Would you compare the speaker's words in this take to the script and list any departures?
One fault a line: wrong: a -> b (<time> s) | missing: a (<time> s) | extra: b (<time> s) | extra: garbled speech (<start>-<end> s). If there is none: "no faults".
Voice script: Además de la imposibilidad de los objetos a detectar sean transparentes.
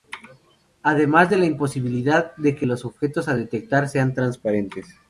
extra: que (2.6 s)